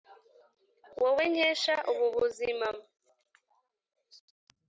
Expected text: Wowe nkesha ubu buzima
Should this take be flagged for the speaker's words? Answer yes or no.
no